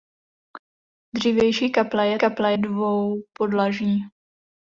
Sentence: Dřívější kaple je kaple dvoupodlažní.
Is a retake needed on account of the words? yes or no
no